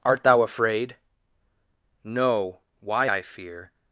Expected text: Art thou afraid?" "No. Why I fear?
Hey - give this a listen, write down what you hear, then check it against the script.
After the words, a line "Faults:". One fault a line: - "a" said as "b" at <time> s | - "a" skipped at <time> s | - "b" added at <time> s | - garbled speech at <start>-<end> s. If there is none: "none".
Art thou afraid?" "No. Why I fear?
Faults:
none